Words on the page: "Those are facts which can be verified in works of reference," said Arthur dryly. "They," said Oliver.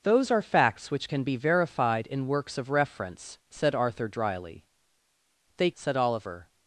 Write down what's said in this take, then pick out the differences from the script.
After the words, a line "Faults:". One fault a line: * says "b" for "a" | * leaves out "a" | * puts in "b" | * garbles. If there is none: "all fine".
"Those are facts which can be verified in works of reference," said Arthur dryly. "They," said Oliver.
Faults:
all fine